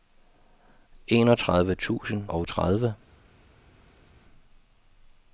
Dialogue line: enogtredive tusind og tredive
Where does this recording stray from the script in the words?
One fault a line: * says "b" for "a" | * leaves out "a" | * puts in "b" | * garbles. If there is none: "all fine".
all fine